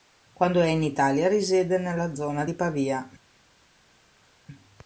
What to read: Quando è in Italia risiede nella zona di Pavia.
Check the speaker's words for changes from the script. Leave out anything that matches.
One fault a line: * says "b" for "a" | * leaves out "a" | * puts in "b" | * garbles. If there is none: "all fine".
all fine